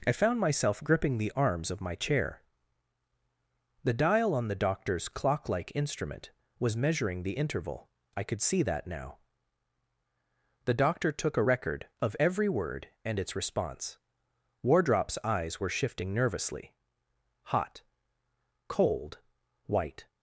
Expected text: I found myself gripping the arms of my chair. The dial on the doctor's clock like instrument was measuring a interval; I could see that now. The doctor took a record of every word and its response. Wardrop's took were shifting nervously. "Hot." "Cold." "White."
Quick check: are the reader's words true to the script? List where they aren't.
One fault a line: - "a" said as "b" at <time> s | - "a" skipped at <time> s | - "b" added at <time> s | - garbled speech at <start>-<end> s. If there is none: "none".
- "a" said as "the" at 7.2 s
- "took" said as "eyes" at 15.2 s